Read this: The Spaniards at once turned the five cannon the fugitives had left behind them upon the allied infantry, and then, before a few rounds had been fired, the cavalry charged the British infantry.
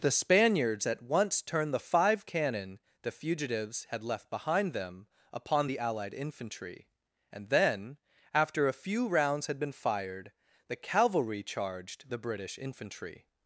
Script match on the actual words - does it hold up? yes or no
no